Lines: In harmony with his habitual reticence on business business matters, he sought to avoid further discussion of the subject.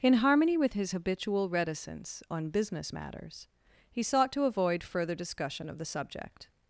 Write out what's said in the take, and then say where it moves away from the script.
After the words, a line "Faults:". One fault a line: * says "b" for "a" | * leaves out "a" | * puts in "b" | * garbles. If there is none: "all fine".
In harmony with his habitual reticence on business matters, he sought to avoid further discussion of the subject.
Faults:
* leaves out "business"